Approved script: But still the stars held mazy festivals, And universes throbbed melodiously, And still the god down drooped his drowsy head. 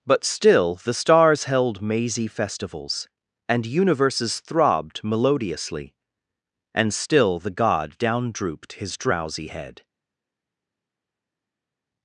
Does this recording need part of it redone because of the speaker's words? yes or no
no